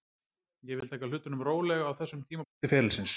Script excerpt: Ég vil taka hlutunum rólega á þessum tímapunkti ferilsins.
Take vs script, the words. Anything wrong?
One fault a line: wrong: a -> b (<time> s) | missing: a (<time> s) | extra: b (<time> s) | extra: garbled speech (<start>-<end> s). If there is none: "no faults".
no faults